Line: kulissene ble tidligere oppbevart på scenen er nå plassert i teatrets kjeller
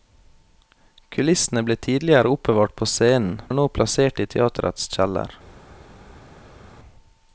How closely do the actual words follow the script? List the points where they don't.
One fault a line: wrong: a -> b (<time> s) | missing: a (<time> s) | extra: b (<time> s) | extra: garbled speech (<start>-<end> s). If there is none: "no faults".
no faults